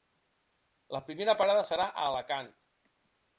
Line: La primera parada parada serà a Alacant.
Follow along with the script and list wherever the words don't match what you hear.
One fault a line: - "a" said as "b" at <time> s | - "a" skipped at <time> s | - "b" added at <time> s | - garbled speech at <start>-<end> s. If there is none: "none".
- "parada" skipped at 1.7 s